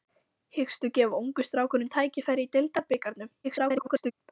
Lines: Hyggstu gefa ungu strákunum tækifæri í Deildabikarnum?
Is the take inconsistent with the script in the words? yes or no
yes